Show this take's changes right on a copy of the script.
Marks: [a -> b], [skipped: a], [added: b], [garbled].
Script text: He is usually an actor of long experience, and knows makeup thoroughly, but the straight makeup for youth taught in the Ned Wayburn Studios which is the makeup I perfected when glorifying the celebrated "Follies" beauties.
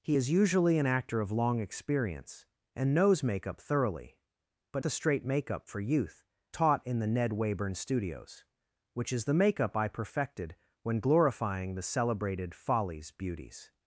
He is usually an actor of long experience, and knows makeup thoroughly, but the straight makeup for youth taught in the Ned Wayburn Studios which is the makeup I perfected when glorifying the celebrated "Follies" beauties.